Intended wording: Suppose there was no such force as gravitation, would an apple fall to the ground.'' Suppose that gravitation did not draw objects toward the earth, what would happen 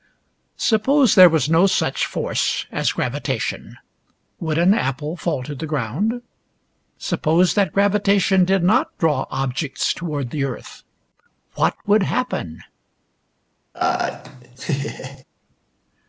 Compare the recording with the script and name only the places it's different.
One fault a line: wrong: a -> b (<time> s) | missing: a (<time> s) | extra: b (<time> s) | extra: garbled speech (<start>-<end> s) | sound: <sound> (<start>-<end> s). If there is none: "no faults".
sound: laugh (13.7-15.2 s)